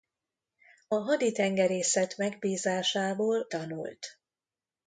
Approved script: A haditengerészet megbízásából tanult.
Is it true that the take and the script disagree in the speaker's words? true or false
false